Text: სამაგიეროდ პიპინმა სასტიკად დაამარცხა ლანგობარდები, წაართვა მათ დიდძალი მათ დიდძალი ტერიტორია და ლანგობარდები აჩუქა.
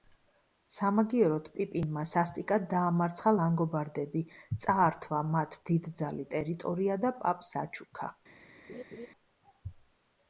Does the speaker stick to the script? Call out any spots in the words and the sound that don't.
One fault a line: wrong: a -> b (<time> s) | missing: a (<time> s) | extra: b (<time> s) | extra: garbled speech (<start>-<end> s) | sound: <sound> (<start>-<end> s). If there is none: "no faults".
missing: მათ დიდძალი (6.3 s)
wrong: ლანგობარდები -> პაპს (7.2 s)
sound: laugh (8.7-9.1 s)